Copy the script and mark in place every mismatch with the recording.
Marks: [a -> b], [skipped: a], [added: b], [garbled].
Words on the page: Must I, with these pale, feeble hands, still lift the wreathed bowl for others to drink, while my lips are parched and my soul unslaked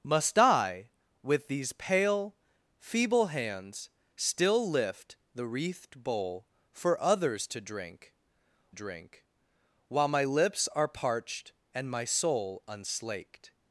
Must I, with these pale, feeble hands, still lift the wreathed bowl for others to drink, [added: drink] while my lips are parched and my soul unslaked